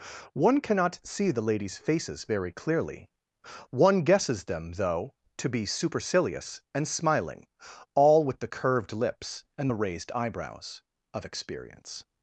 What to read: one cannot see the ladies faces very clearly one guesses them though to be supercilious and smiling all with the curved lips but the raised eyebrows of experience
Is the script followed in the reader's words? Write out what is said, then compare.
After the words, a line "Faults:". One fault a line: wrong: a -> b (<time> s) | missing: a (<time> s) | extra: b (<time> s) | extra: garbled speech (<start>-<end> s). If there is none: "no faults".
one cannot see the ladies faces very clearly one guesses them though to be supercilious and smiling all with the curved lips and the raised eyebrows of experience
Faults:
wrong: but -> and (9.6 s)